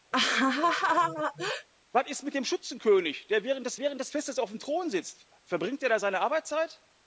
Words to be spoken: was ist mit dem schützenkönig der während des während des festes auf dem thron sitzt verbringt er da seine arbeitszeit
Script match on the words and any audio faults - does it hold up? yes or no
no